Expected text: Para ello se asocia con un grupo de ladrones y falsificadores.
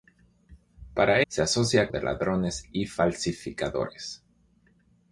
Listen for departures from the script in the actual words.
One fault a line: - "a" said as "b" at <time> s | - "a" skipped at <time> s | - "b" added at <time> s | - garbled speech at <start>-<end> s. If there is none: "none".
- "ello" skipped at 1.2 s
- "con un grupo" skipped at 1.9 s